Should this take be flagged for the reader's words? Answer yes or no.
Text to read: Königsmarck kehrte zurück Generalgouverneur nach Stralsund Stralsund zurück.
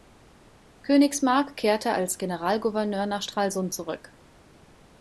yes